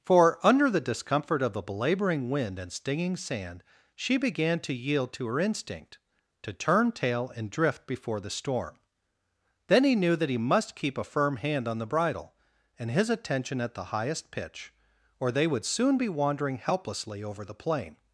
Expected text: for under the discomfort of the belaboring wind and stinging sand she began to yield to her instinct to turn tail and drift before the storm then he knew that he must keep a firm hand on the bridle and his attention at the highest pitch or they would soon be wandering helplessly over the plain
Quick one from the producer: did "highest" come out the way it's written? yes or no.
yes